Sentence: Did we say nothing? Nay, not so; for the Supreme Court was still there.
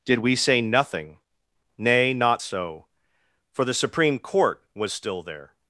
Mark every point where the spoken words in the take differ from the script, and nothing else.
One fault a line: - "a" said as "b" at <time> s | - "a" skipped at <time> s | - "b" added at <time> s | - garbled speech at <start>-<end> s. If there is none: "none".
none